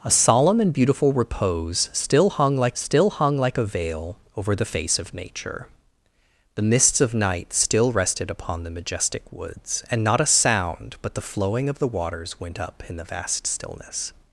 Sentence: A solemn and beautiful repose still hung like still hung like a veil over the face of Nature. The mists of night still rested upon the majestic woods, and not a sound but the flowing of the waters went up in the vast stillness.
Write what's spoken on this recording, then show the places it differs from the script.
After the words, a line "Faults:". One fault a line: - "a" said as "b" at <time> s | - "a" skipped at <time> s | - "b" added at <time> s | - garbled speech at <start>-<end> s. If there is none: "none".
A solemn and beautiful repose still hung like still hung like a veil over the face of Nature. The mists of night still rested upon the majestic woods, and not a sound but the flowing of the waters went up in the vast stillness.
Faults:
none